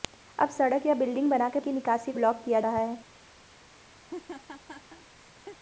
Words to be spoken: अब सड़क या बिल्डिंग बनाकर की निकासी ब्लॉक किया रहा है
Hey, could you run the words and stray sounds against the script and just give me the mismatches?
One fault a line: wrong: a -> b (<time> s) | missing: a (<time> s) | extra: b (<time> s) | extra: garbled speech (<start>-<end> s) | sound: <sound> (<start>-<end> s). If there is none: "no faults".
sound: laugh (4.0-5.6 s)